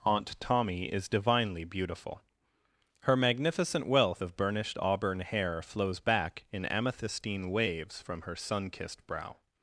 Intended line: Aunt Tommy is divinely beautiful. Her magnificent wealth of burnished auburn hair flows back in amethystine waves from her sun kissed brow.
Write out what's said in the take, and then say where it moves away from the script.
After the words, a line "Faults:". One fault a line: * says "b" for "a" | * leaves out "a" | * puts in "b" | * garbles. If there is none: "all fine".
Aunt Tommy is divinely beautiful. Her magnificent wealth of burnished auburn hair flows back in amethystine waves from her sun kissed brow.
Faults:
all fine